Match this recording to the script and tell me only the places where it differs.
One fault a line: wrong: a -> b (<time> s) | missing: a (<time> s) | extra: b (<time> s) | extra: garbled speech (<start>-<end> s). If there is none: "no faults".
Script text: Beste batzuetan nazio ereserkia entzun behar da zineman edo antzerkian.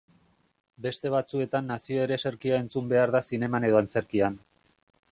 no faults